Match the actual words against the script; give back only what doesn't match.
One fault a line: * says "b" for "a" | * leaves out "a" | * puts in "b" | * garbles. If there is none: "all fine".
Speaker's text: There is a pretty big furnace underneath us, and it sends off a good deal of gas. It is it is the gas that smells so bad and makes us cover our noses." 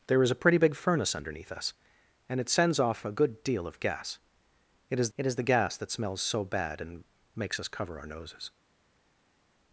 all fine